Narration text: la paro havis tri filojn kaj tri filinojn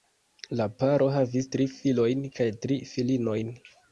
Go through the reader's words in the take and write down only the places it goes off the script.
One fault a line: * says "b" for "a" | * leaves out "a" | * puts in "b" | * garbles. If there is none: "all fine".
all fine